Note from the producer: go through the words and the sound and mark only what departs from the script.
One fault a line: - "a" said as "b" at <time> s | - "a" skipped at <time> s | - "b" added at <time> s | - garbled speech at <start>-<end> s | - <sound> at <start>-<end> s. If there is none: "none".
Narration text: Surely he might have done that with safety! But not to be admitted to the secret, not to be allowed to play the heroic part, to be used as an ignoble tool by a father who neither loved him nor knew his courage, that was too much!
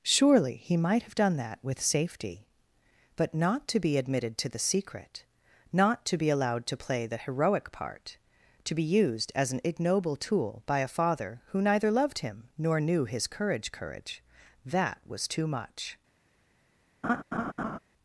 - "courage" added at 13.7 s
- laugh at 17.0-17.8 s